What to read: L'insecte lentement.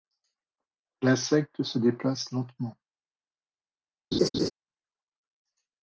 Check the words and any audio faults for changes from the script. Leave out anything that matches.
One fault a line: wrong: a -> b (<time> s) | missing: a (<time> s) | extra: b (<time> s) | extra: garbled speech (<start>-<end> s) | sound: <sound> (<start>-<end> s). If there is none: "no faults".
extra: se déplace (1.6 s)
sound: laugh (4.1-4.5 s)